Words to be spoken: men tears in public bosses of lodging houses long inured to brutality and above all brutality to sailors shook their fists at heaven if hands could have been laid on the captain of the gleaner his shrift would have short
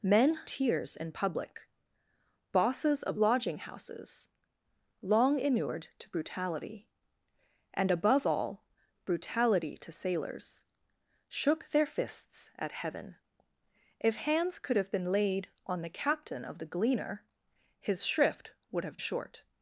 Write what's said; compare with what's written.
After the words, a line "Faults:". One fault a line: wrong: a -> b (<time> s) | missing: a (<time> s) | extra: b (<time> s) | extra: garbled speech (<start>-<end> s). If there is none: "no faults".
men tears in public bosses of lodging houses long inured to brutality and above all brutality to sailors shook their fists at heaven if hands could have been laid on the captain of the gleaner his shrift would have short
Faults:
no faults